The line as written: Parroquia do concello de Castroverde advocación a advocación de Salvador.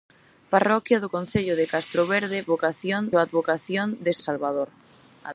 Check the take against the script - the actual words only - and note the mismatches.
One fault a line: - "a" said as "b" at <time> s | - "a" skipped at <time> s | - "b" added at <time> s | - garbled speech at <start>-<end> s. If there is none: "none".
none